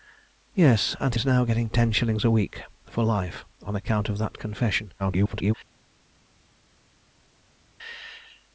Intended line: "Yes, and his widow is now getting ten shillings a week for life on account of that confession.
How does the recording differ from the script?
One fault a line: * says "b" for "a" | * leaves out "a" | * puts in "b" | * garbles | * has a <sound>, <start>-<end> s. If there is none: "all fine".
* leaves out "his widow"
* garbles